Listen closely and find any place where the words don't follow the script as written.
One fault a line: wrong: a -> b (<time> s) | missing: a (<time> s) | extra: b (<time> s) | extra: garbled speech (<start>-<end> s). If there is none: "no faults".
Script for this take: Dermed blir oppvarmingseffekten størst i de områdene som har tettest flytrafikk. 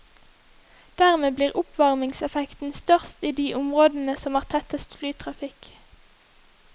no faults